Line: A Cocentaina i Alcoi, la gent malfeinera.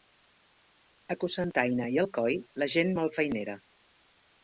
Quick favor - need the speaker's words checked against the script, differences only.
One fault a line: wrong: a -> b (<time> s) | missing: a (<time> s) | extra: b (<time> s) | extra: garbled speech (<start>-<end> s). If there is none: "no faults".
no faults